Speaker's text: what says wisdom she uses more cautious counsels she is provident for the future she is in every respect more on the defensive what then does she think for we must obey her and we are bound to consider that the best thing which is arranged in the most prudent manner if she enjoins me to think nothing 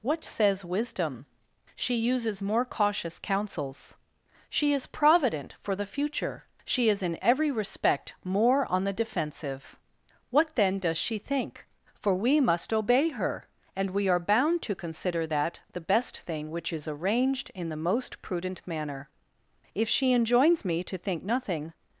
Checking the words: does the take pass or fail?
pass